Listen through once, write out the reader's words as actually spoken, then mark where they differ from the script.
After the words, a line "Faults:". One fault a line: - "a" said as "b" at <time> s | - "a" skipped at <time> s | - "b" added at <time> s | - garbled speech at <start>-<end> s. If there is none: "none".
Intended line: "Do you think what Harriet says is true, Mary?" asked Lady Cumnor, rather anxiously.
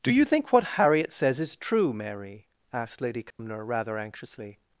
"Do you think what Harriet says is true, Mary?" asked Lady Cumnor, rather anxiously.
Faults:
none